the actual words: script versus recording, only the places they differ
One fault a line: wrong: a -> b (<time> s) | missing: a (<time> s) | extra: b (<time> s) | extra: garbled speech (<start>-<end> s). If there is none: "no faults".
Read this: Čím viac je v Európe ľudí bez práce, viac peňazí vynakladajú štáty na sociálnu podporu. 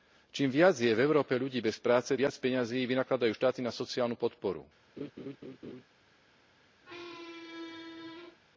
no faults